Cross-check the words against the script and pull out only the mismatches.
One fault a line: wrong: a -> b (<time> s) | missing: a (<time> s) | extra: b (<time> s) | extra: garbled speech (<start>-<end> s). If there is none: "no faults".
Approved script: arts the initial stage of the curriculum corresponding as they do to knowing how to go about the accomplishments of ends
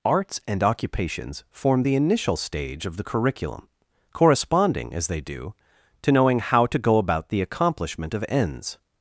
extra: and occupations form (0.5 s)
wrong: accomplishments -> accomplishment (7.4 s)